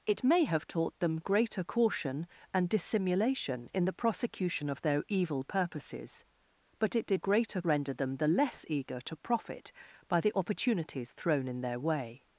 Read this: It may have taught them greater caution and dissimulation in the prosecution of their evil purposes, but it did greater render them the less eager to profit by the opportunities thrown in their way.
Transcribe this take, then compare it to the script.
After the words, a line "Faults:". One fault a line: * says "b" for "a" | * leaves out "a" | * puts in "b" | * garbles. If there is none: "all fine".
It may have taught them greater caution and dissimulation in the prosecution of their evil purposes, but it did greater render them the less eager to profit by the opportunities thrown in their way.
Faults:
all fine